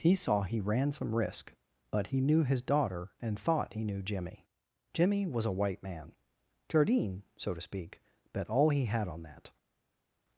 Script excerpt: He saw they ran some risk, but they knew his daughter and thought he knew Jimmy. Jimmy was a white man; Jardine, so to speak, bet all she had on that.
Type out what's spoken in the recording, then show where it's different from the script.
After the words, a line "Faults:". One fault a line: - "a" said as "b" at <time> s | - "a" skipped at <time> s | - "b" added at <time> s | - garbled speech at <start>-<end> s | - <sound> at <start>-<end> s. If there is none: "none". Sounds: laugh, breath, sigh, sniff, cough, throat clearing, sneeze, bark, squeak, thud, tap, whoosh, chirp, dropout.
He saw he ran some risk, but he knew his daughter and thought he knew Jimmy. Jimmy was a white man; Jardine, so to speak, bet all he had on that.
Faults:
- "they" said as "he" at 0.4 s
- "they" said as "he" at 2.1 s
- "she" said as "he" at 8.7 s